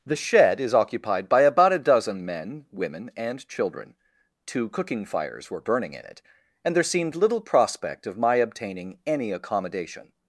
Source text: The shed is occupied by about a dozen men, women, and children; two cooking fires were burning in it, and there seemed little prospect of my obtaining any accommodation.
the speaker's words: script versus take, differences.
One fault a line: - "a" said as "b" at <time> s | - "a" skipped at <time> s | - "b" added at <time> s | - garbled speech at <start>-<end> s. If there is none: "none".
none